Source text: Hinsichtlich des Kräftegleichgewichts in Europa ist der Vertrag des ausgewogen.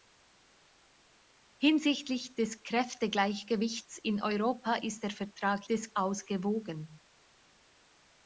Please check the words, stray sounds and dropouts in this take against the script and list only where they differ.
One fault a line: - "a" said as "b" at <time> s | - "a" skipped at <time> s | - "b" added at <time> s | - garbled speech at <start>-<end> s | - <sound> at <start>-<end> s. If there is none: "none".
none